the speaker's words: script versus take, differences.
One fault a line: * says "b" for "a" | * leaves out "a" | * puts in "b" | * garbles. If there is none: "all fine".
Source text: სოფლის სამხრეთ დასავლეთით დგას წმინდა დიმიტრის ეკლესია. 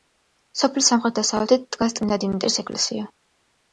all fine